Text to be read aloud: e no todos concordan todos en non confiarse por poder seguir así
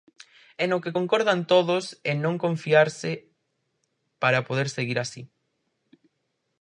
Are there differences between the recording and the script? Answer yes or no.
yes